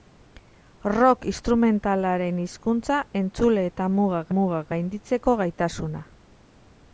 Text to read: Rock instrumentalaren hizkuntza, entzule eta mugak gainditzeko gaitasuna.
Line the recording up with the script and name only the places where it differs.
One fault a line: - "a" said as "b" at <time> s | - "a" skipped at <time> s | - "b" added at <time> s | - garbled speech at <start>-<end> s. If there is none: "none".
- "mugak" added at 4.4 s